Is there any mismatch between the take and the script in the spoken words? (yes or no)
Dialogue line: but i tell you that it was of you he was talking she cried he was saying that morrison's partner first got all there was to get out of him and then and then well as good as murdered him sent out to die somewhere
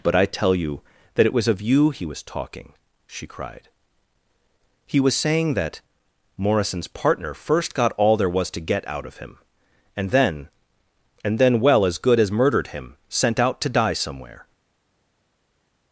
no